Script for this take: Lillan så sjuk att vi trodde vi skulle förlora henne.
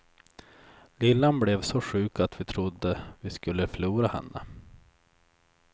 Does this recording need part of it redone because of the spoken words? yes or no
yes